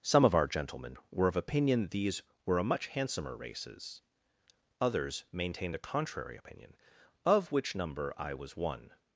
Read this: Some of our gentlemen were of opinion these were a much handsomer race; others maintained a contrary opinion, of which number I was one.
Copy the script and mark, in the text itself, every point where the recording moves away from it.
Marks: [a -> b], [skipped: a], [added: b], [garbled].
Some of our gentlemen were of opinion these were a much handsomer [race; -> races] others maintained a contrary opinion, of which number I was one.